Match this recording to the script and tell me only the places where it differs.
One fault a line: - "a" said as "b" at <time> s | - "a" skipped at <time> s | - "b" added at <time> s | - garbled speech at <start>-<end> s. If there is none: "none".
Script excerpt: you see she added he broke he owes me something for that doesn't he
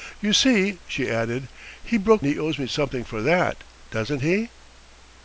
none